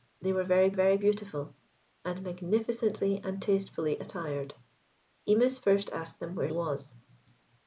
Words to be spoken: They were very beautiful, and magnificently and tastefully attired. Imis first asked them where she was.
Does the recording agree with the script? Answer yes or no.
no